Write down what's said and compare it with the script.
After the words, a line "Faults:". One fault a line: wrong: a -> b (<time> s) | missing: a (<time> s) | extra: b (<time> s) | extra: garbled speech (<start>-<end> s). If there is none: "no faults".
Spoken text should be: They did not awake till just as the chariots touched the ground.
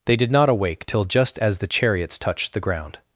They did not awake till just as the chariots touched the ground.
Faults:
no faults